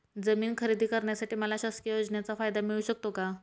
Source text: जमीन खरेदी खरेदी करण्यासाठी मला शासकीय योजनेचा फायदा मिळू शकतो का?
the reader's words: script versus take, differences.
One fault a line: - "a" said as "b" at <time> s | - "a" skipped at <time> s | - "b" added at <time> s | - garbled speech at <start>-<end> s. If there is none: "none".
- "खरेदी" skipped at 0.8 s